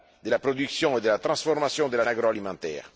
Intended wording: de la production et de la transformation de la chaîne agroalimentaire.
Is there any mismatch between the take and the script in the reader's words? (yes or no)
yes